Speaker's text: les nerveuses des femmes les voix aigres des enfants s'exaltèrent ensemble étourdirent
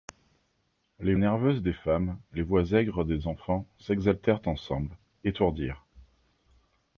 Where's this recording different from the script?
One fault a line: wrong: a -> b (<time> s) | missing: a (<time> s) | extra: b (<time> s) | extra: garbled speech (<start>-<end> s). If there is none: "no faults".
no faults